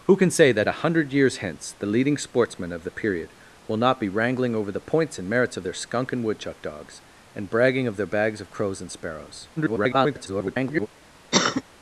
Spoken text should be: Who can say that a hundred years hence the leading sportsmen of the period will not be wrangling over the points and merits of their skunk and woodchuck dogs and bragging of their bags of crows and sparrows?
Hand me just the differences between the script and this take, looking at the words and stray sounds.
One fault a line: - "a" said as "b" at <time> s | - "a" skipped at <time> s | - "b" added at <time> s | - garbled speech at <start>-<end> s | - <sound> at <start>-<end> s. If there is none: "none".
- garbled speech at 9.6-10.9 s
- cough at 11.3-11.6 s